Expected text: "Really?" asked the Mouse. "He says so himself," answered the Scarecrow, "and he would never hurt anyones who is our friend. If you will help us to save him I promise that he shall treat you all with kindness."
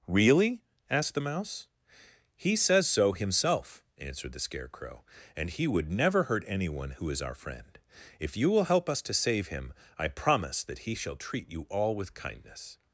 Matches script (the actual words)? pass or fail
fail